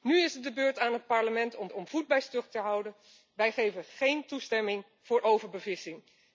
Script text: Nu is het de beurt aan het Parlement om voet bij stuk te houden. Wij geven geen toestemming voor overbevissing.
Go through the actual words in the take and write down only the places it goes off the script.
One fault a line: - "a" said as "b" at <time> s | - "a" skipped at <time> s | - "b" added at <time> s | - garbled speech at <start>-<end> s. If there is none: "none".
- "om" added at 1.7 s